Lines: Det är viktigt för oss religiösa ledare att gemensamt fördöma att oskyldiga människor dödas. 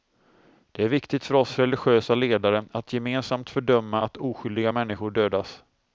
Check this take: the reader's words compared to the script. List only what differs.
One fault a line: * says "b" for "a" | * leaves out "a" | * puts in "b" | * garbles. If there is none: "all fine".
all fine